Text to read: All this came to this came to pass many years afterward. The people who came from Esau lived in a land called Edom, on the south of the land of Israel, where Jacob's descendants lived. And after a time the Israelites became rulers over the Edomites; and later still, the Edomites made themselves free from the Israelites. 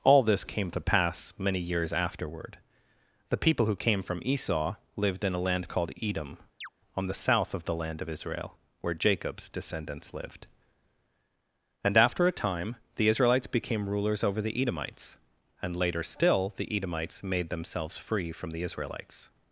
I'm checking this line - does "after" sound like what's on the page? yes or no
yes